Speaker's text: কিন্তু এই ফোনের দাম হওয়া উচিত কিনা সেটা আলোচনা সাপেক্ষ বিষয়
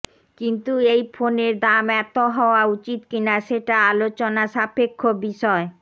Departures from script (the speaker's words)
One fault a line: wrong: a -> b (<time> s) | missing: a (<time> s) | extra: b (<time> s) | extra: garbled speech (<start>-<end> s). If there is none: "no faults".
extra: এত (2.0 s)